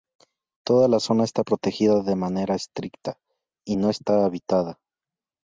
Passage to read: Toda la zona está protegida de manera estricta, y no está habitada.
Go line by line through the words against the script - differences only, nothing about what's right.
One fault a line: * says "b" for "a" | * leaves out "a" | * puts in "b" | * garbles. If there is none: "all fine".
all fine